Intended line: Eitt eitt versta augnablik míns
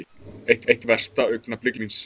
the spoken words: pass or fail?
pass